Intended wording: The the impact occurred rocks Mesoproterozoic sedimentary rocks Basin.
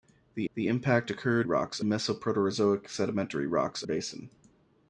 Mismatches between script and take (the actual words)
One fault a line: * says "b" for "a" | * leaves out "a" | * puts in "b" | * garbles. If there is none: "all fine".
all fine